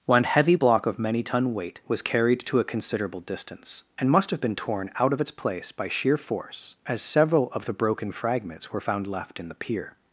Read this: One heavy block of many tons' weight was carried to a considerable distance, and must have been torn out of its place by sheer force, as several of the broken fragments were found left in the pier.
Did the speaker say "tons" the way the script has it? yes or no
no